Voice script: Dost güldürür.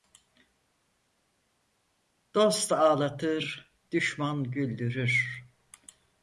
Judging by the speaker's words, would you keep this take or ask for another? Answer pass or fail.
fail